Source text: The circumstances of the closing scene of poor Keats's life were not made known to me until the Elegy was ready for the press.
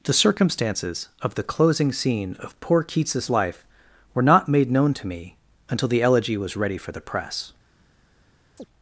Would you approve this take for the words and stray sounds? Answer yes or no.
no